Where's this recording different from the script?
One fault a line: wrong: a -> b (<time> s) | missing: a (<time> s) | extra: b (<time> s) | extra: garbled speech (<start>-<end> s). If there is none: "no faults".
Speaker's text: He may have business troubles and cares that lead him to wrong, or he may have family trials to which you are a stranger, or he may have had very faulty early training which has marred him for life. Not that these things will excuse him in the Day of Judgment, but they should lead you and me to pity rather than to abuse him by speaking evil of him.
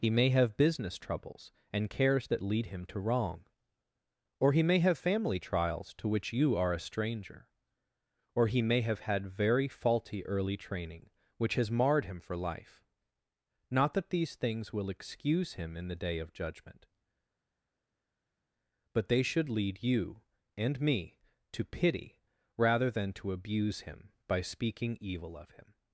no faults